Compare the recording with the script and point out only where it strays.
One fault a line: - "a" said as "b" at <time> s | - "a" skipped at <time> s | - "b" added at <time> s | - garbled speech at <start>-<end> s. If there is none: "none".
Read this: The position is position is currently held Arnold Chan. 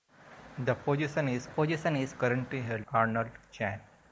none